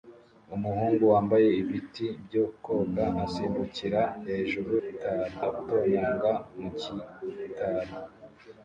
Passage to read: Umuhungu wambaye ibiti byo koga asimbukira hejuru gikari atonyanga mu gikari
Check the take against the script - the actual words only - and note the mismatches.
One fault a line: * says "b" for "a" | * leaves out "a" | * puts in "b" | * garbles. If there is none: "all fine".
all fine